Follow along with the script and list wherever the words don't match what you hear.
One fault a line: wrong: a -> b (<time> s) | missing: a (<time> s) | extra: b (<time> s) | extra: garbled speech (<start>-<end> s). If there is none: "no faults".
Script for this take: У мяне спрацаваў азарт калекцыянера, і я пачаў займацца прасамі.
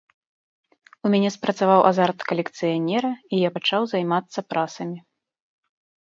no faults